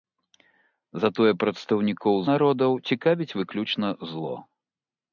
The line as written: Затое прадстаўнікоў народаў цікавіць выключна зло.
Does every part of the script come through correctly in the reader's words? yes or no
yes